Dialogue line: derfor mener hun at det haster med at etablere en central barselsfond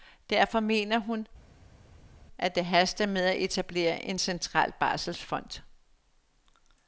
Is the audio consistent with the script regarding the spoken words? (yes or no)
yes